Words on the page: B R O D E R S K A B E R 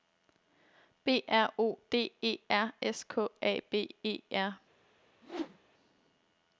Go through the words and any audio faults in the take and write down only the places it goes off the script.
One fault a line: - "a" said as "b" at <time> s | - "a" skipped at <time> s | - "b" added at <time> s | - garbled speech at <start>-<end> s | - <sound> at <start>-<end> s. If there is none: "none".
- whoosh at 5.2-5.6 s